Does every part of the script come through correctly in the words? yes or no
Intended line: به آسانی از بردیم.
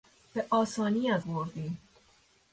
yes